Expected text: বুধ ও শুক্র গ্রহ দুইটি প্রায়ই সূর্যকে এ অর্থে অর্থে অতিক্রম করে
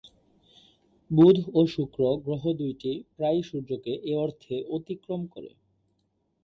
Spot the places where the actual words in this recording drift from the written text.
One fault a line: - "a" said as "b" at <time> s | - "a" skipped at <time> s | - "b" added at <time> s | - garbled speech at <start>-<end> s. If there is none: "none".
- "অর্থে" skipped at 4.6 s